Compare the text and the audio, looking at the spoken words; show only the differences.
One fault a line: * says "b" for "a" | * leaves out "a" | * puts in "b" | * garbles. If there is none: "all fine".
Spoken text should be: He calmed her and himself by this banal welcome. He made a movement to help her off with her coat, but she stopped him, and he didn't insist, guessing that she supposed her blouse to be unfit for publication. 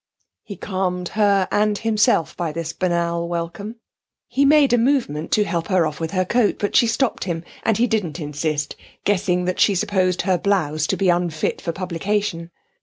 all fine